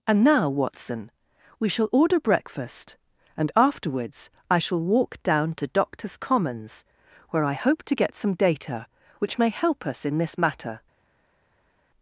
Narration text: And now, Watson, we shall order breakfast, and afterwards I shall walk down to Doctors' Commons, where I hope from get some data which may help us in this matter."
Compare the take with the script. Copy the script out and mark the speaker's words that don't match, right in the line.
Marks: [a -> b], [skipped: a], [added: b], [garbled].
And now, Watson, we shall order breakfast, and afterwards I shall walk down to Doctors' Commons, where I hope [from -> to] get some data which may help us in this matter."